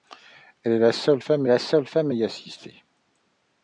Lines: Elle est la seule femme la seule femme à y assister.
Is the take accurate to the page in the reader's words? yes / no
yes